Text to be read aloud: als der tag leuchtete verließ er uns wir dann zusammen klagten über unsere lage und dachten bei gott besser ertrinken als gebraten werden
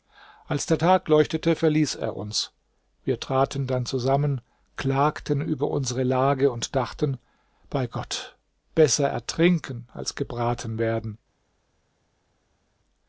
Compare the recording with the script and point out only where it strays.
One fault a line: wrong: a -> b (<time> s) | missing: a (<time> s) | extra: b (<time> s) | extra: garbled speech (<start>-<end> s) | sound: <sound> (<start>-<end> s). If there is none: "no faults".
extra: traten (3.2 s)